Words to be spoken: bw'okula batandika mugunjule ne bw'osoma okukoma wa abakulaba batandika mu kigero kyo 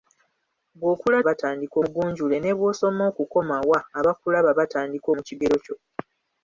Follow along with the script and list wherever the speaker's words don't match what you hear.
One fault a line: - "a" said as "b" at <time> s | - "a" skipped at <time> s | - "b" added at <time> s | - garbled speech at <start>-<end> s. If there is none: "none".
none